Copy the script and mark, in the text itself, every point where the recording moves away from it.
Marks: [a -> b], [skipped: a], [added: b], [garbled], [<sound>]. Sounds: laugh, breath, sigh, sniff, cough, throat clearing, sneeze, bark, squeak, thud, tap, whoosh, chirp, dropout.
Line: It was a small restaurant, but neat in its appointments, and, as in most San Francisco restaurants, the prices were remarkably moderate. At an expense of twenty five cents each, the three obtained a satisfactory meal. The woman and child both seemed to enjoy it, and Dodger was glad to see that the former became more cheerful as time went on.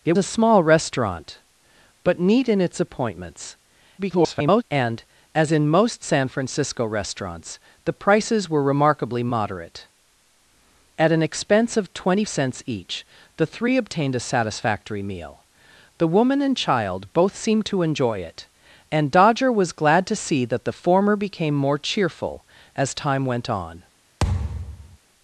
It [skipped: was] a small restaurant, but neat in its appointments, [garbled] and, as in most San Francisco restaurants, the prices were remarkably moderate. At an expense of twenty [skipped: five] cents each, the three obtained a satisfactory meal. The woman and child both seemed to enjoy it, and Dodger was glad to see that the former became more cheerful as time went on. [thud]